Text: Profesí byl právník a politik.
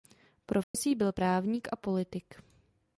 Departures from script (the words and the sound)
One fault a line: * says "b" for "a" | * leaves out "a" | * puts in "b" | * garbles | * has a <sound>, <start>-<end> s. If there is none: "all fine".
* has a dropout, 0.6-0.7 s